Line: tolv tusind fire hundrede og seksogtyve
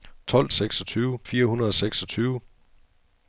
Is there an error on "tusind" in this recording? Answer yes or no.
yes